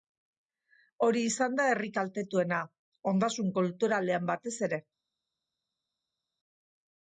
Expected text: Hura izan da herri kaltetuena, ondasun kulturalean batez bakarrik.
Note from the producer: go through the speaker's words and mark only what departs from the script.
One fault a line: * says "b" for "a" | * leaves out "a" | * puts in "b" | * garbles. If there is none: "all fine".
* says "Hori" for "Hura"
* says "ere" for "bakarrik"